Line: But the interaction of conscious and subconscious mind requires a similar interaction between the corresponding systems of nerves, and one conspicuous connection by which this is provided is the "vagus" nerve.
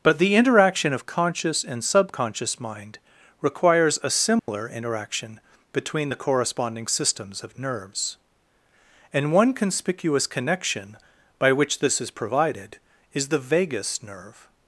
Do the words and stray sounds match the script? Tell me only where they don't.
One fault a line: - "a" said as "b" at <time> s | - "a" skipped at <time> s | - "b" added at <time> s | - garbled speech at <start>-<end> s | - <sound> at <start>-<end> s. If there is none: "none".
- dropout at 4.4-4.5 s